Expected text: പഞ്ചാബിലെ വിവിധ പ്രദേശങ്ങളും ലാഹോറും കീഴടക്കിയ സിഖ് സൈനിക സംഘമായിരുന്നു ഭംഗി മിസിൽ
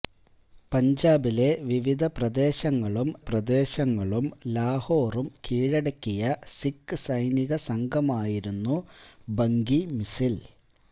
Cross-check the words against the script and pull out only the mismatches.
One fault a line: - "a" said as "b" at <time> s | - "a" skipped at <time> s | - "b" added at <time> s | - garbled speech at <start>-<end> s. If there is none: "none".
- "പ്രദേശങ്ങളും" added at 3.3 s